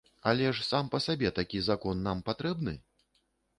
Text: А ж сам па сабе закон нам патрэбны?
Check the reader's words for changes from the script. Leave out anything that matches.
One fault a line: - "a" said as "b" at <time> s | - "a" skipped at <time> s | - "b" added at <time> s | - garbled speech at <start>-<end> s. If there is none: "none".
- "А" said as "Але" at 0.3 s
- "такі" added at 1.4 s